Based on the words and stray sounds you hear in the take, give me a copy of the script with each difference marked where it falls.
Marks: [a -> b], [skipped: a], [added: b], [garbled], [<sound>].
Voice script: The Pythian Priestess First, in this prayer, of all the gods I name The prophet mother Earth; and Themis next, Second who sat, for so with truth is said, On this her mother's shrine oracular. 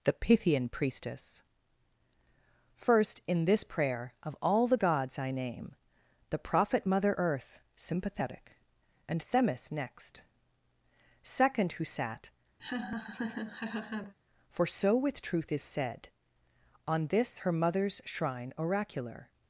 The Pythian Priestess First, in this prayer, of all the gods I name The prophet mother Earth; [added: sympathetic] and Themis next, Second who sat, [laugh] for so with truth is said, On this her mother's shrine oracular.